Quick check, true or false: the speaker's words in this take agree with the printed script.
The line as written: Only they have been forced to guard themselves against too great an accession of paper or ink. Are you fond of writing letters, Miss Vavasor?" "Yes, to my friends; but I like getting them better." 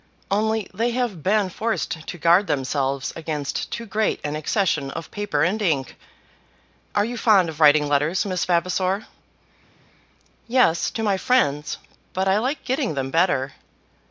false